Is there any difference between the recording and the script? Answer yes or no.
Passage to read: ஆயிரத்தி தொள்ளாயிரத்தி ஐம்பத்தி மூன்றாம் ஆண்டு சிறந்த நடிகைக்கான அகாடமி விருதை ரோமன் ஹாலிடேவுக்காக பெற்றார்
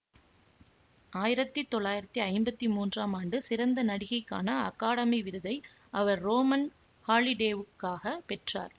yes